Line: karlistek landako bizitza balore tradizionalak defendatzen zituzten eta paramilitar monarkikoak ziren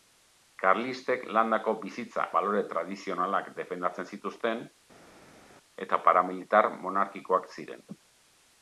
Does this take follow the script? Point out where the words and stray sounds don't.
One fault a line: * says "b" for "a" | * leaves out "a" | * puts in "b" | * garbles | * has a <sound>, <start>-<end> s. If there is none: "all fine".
all fine